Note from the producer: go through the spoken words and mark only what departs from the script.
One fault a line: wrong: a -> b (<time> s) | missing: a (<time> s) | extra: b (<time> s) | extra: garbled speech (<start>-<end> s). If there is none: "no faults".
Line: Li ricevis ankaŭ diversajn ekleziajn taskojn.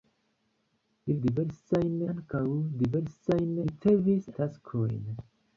wrong: ricevis -> diversajn (1.2 s)
wrong: ekleziajn -> ricevis (3.6 s)